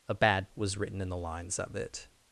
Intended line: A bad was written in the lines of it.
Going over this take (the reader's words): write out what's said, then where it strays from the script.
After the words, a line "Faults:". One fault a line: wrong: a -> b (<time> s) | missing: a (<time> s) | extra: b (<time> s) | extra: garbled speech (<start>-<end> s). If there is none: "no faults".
A bad was written in the lines of it.
Faults:
no faults